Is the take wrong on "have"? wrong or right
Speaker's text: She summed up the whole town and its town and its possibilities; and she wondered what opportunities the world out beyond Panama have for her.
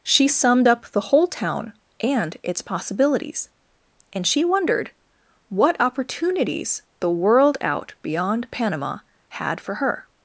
wrong